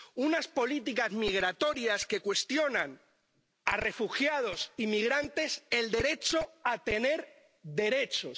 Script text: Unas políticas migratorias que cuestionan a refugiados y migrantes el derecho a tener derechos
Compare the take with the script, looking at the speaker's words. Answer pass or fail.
pass